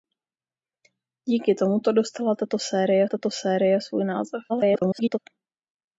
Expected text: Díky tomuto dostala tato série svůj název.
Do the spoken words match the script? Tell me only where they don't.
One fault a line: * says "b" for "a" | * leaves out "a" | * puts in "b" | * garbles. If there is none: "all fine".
* puts in "tato série"
* garbles